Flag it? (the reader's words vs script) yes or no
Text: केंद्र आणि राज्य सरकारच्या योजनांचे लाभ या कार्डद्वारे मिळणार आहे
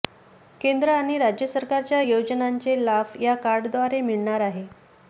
no